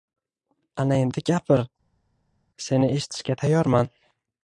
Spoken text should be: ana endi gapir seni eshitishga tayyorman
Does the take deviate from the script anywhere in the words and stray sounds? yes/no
no